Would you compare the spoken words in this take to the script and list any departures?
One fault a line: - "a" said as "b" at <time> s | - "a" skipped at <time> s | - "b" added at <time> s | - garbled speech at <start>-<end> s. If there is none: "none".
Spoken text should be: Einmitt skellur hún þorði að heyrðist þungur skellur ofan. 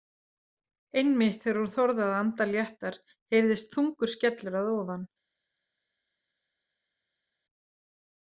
- "skellur" said as "þegar" at 1.4 s
- "anda léttar" added at 2.2 s
- "að" added at 4.6 s